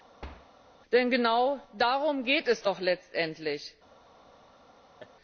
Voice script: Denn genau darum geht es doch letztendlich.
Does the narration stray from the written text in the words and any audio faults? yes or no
yes